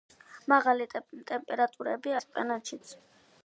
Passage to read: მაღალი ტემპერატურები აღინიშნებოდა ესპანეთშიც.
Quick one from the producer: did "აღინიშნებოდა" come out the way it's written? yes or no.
no